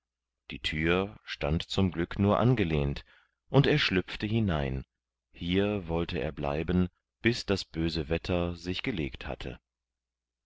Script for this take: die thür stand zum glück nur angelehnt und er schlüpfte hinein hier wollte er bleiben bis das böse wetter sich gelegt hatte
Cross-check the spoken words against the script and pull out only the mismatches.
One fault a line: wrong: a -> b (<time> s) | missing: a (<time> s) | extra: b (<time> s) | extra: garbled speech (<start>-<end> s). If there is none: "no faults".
no faults